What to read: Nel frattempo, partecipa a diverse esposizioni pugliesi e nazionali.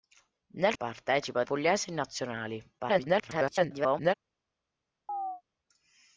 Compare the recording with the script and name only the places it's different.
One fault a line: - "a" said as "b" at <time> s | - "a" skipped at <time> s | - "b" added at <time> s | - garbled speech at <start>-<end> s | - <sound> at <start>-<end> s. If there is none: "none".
- "frattempo" skipped at 0.7 s
- "diverse esposizioni" skipped at 1.4 s
- garbled speech at 2.8-4.1 s
- chirp at 5.1-5.4 s